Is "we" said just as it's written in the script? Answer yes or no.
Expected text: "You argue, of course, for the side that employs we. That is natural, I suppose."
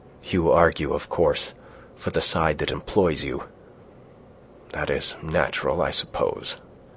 no